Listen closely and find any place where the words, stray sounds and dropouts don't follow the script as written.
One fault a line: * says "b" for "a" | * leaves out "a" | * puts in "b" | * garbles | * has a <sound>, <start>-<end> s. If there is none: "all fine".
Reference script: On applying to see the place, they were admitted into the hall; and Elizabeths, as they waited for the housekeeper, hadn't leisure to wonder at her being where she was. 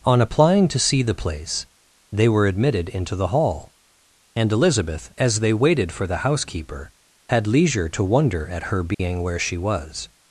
* says "Elizabeth" for "Elizabeths"
* says "had" for "hadn't"
* has a dropout, 8.9-9.0 s